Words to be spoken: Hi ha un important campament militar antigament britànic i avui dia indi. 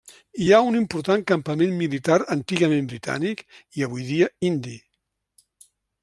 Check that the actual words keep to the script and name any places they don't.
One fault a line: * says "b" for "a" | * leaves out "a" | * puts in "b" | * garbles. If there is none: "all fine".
all fine